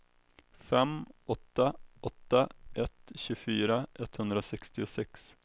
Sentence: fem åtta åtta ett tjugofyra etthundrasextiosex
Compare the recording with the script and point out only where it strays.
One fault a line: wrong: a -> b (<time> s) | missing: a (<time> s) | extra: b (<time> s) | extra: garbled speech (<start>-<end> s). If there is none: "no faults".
no faults